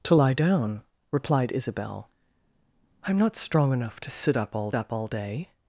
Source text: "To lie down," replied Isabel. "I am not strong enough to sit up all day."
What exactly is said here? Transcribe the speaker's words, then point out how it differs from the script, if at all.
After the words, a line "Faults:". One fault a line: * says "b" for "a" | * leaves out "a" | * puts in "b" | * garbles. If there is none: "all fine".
"To lie down," replied Isabel. "I am not strong enough to sit up all up all day."
Faults:
* puts in "up all"